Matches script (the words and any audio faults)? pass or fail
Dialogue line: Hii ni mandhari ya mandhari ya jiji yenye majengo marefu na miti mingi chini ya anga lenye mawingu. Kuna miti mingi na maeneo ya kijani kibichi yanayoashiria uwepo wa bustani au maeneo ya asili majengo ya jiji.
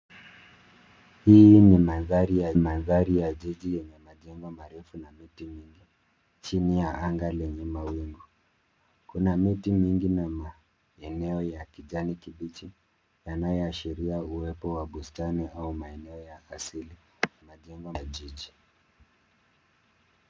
pass